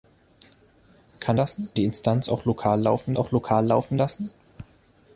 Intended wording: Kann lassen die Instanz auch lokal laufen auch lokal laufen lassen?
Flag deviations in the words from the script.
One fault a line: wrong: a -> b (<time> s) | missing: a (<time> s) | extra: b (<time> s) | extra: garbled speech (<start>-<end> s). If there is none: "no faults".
no faults